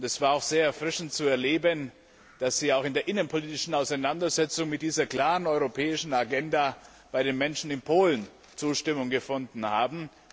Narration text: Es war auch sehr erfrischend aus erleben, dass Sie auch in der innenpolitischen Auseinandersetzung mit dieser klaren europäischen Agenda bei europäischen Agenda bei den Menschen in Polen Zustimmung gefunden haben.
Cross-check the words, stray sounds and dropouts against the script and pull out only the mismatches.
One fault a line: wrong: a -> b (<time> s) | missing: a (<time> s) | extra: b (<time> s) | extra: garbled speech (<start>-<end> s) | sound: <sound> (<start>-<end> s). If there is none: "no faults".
wrong: aus -> zu (1.1 s)
missing: europäischen Agenda bei (7.2 s)